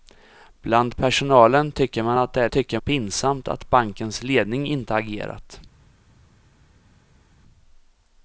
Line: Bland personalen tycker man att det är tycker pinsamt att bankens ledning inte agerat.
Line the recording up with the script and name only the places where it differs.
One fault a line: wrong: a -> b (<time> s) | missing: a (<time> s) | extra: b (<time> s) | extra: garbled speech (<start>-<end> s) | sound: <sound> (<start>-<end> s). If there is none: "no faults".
no faults